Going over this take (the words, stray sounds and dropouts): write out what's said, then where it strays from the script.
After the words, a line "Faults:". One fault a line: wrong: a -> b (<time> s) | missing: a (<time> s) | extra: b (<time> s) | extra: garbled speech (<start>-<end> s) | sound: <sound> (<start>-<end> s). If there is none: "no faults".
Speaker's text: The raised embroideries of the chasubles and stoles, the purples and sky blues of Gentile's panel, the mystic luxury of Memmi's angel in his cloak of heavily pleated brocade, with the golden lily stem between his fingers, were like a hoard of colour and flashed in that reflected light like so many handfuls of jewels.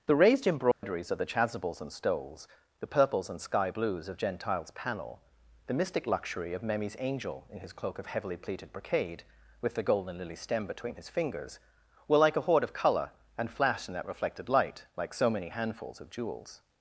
The raised embroideries of the chasubles and stoles, the purples and sky blues of Gentile's panel, the mystic luxury of Memmi's angel in his cloak of heavily pleated brocade, with the golden lily stem between his fingers, were like a hoard of colour and flashed in that reflected light like so many handfuls of jewels.
Faults:
sound: dropout (0.7-0.8 s)